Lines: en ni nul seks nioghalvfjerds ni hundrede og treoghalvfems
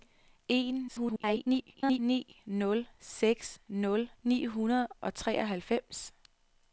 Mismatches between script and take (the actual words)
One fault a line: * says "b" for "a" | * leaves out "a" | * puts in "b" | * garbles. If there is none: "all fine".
* garbles
* says "nul" for "nioghalvfjerds"